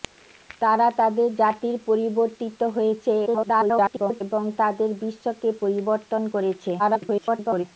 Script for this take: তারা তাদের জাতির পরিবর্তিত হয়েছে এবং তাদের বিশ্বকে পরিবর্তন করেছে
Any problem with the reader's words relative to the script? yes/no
yes